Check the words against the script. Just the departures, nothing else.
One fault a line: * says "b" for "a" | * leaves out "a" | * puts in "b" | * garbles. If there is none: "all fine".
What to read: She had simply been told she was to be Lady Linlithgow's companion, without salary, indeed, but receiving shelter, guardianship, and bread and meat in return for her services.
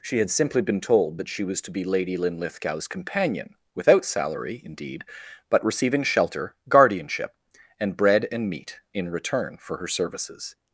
* puts in "that"